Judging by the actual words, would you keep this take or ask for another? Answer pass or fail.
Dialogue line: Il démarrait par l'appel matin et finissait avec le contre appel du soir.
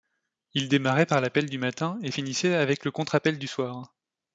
fail